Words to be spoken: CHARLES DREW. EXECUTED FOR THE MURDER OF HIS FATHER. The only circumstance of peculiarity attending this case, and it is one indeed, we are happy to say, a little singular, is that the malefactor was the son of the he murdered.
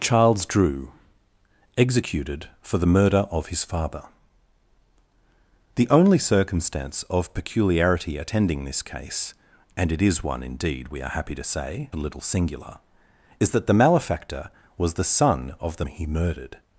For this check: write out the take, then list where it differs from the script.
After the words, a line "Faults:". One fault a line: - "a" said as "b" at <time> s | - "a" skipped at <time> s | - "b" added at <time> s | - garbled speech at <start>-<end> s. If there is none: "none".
CHARLES DREW. EXECUTED FOR THE MURDER OF HIS FATHER. The only circumstance of peculiarity attending this case, and it is one indeed, we are happy to say, a little singular, is that the malefactor was the son of the he murdered.
Faults:
none